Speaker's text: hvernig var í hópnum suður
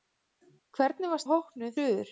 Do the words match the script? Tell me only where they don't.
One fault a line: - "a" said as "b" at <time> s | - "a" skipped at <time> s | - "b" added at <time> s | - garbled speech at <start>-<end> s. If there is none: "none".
none